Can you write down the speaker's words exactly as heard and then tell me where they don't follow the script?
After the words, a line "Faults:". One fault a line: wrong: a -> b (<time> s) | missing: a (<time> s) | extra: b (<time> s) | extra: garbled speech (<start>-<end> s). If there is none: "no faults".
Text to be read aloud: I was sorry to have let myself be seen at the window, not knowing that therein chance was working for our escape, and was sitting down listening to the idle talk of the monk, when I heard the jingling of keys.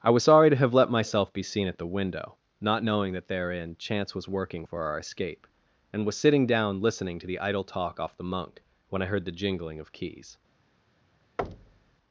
I was sorry to have let myself be seen at the window, not knowing that therein chance was working for our escape, and was sitting down listening to the idle talk off the monk, when I heard the jingling of keys.
Faults:
wrong: of -> off (8.0 s)